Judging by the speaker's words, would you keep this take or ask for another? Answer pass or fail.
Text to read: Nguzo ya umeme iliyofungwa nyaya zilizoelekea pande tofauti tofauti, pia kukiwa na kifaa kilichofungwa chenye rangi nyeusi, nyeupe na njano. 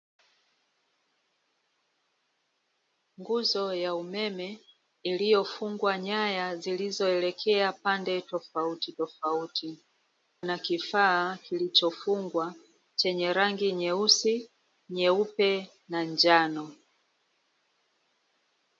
fail